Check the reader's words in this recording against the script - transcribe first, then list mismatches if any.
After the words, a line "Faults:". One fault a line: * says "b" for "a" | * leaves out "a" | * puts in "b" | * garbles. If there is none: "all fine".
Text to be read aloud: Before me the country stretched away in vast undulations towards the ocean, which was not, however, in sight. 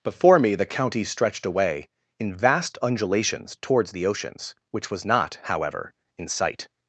Before me the county stretched away in vast undulations towards the oceans, which was not, however, in sight.
Faults:
* says "county" for "country"
* says "oceans" for "ocean"